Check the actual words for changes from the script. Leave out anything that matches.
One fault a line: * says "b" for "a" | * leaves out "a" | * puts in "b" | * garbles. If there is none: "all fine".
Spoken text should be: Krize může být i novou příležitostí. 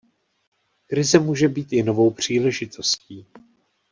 all fine